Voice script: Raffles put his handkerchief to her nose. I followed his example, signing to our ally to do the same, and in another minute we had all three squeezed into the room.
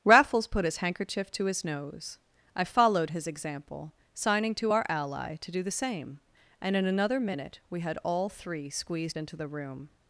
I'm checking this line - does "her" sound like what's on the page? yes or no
no